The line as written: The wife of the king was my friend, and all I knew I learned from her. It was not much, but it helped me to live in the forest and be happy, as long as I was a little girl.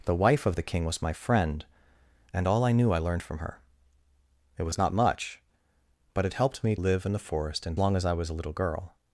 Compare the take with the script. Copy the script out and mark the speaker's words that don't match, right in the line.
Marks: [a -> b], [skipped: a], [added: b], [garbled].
The wife of the king was my friend, and all I knew I learned from her. It was not much, but it helped me [skipped: to] live in the forest and [skipped: be happy, as] long as I was a little girl.